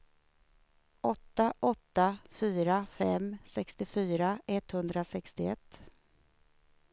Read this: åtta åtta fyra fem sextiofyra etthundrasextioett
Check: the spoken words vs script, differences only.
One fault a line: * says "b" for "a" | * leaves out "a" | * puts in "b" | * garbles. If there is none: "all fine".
all fine